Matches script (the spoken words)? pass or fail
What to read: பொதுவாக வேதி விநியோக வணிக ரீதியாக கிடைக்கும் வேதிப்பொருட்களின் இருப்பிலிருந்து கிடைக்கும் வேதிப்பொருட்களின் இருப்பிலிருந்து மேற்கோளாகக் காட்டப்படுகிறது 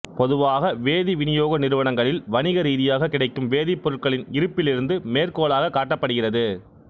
fail